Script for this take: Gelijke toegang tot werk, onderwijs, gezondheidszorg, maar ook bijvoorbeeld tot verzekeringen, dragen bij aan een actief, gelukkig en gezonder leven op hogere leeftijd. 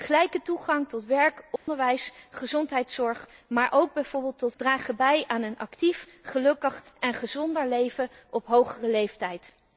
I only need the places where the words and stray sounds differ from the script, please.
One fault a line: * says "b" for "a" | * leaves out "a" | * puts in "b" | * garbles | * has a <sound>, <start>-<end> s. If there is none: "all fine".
* has a dropout, 1.6-1.7 s
* leaves out "verzekeringen"